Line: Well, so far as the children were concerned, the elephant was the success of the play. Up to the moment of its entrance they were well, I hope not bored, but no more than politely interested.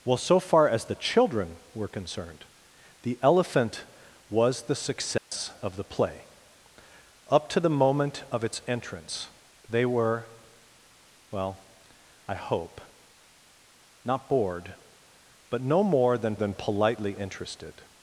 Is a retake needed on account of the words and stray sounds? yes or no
yes